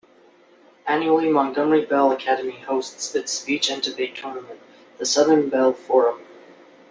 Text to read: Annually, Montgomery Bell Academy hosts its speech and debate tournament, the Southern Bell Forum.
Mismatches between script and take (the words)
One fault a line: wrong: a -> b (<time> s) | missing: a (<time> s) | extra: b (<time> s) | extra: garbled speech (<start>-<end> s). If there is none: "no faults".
no faults